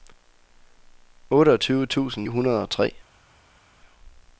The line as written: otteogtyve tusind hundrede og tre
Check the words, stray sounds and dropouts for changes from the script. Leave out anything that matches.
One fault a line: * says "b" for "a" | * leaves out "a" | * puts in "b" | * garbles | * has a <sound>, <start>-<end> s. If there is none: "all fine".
all fine